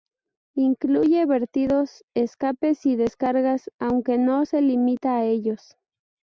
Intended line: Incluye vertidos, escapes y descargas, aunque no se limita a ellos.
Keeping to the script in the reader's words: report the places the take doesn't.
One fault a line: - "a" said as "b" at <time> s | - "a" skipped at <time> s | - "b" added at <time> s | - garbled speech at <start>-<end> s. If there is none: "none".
none